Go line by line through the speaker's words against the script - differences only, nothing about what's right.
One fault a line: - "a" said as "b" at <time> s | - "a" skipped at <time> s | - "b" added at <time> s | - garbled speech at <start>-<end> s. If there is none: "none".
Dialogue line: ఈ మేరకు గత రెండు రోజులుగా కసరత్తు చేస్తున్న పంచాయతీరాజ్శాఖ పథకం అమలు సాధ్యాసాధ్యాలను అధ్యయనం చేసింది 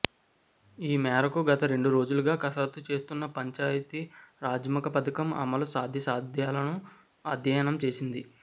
none